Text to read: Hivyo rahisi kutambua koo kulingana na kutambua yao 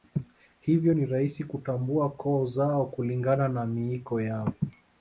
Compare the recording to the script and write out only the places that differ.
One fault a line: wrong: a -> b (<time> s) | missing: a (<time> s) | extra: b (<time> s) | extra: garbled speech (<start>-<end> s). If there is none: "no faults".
extra: ni (0.9 s)
extra: zao (2.5 s)
wrong: kutambua -> miiko (3.7 s)